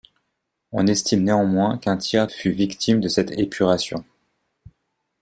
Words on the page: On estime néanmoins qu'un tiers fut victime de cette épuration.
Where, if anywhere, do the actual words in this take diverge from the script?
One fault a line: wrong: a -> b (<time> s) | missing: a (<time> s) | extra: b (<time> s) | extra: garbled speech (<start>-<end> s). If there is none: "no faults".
no faults